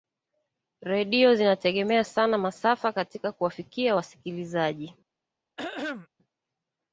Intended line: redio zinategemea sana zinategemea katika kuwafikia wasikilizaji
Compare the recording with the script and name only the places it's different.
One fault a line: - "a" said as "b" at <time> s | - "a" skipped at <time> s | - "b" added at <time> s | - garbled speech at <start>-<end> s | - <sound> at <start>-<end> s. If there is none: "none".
- "zinategemea" said as "masafa" at 2.4 s
- throat clearing at 5.6-6.1 s